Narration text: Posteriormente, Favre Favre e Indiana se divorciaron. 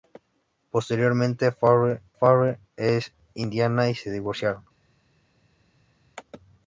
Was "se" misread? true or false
false